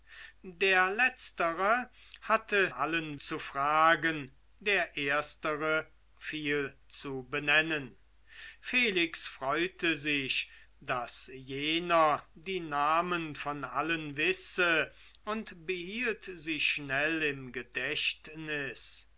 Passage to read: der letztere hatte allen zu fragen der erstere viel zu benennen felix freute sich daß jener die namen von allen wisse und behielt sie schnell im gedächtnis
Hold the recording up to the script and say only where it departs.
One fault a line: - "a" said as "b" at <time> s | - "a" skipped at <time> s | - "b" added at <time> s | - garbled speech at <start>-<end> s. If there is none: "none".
none